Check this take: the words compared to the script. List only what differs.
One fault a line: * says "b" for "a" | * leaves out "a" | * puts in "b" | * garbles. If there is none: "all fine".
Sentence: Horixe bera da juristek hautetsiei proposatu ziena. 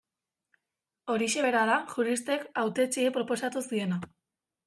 all fine